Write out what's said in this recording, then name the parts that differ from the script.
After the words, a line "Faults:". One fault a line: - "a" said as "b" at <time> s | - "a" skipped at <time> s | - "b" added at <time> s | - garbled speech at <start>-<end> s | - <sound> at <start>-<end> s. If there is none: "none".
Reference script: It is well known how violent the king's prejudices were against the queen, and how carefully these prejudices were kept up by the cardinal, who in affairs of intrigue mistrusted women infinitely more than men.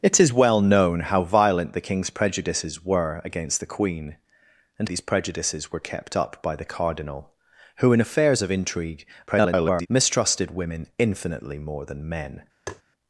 It is well known how violent the king's prejudices were against the queen, and these prejudices were kept up by the cardinal, who in affairs of intrigue [garbled] mistrusted women infinitely more than men.
Faults:
- "how carefully" skipped at 4.9 s
- garbled speech at 9.3-9.9 s
- tap at 12.7-12.8 s